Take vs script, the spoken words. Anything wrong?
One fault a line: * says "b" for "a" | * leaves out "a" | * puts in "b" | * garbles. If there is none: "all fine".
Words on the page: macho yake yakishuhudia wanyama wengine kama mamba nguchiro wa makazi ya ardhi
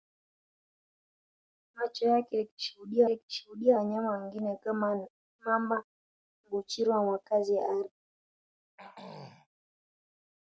* puts in "yakishuhudia"